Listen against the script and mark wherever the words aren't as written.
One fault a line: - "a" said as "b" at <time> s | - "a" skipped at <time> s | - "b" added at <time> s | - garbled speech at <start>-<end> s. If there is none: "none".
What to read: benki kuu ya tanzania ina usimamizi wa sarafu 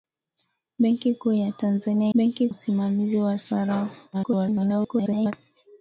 - "ina" said as "benki" at 2.1 s
- garbled speech at 4.1-5.3 s